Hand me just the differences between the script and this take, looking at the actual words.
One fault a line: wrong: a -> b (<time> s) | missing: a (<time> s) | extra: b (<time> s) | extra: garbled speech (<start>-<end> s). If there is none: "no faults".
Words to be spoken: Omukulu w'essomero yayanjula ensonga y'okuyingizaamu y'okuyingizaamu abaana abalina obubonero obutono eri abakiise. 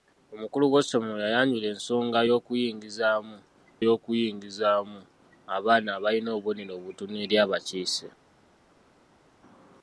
no faults